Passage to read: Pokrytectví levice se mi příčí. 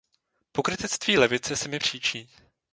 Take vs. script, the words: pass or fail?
pass